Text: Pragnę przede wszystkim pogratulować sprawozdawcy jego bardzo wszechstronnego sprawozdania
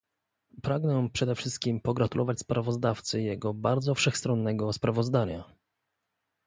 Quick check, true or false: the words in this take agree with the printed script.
true